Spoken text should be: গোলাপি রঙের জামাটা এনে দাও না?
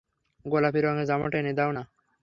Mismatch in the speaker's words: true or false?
false